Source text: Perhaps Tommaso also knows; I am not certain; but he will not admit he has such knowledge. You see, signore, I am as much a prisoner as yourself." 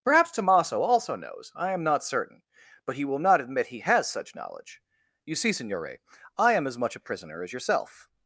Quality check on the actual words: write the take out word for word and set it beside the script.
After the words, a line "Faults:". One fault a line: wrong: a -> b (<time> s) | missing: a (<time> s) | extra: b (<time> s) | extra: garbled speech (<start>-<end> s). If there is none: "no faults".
Perhaps Tommaso also knows; I am not certain; but he will not admit he has such knowledge. You see, signore, I am as much a prisoner as yourself."
Faults:
no faults